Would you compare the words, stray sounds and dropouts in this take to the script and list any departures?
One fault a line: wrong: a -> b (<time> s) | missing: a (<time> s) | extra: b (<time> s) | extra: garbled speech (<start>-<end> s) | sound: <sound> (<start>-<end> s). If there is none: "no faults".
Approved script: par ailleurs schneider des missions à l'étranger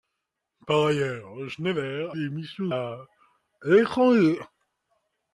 no faults